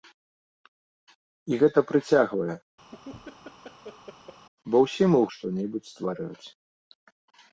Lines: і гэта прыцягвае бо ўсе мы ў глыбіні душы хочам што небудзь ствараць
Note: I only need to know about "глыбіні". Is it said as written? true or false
false